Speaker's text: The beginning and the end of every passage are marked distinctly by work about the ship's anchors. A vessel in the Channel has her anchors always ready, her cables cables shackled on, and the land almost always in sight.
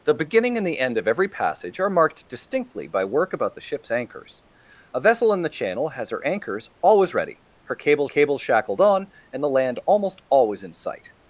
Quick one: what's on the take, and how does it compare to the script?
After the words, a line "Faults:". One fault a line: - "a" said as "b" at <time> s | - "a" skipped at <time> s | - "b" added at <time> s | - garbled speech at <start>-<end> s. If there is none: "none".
The beginning and the end of every passage are marked distinctly by work about the ship's anchors. A vessel in the Channel has her anchors always ready, her cables cables shackled on, and the land almost always in sight.
Faults:
none